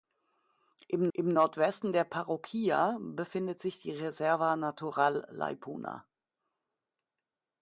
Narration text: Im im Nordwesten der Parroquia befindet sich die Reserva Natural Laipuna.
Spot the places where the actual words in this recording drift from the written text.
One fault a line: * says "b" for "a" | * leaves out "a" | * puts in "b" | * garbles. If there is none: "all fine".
all fine